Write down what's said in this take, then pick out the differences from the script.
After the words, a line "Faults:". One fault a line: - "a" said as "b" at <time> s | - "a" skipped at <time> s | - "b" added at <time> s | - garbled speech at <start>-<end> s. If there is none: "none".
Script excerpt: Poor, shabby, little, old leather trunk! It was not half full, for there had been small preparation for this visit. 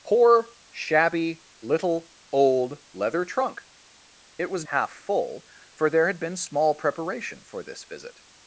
Poor, shabby, little, old leather trunk! It was half full, for there had been small preparation for this visit.
Faults:
- "not" skipped at 4.6 s